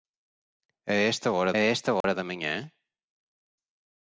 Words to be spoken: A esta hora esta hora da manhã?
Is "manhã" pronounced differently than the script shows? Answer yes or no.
no